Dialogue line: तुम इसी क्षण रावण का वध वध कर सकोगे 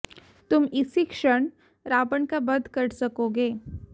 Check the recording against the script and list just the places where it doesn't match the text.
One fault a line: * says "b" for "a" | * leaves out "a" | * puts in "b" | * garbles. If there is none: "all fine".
* leaves out "वध"